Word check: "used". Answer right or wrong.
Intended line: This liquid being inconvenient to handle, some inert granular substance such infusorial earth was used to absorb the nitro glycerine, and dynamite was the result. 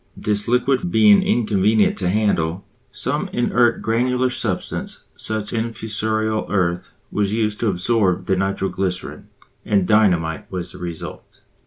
right